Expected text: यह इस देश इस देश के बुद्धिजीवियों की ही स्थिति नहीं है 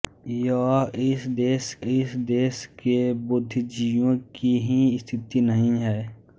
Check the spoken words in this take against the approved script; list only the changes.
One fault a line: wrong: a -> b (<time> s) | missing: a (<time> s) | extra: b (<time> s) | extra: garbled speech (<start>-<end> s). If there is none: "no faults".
no faults